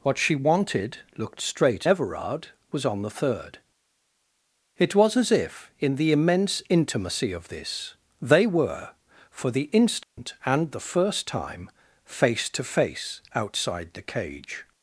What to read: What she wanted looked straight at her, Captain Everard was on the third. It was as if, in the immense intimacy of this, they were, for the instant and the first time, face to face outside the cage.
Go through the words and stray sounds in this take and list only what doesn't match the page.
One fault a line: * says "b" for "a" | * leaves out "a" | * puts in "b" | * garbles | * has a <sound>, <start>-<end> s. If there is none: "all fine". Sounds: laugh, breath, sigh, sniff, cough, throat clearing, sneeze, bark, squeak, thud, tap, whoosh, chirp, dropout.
* leaves out "at her Captain"
* has a dropout, 10.0-10.2 s